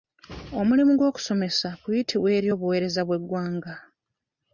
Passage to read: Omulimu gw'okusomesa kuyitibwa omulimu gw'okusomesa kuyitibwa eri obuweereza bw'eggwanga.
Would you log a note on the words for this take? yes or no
yes